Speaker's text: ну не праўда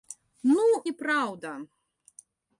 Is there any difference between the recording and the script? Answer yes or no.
no